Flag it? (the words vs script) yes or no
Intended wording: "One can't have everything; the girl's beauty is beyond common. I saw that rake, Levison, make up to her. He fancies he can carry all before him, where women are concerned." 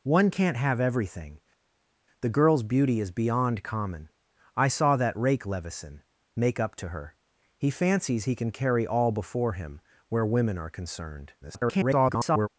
yes